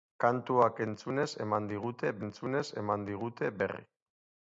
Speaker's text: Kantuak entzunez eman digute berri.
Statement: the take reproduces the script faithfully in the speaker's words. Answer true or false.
false